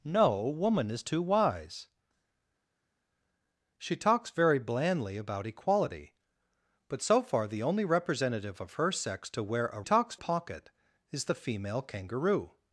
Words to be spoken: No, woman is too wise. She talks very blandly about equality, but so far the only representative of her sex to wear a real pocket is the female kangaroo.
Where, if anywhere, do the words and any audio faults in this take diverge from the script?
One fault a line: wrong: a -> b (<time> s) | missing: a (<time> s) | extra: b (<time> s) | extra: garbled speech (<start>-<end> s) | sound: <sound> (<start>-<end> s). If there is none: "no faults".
wrong: real -> talks (9.8 s)